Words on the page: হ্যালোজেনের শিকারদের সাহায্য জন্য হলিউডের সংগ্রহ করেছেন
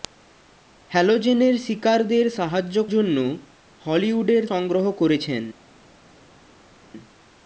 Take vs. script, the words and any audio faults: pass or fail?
pass